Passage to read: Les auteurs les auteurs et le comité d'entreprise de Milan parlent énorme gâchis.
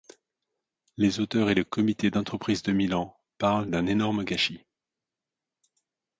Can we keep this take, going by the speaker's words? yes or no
no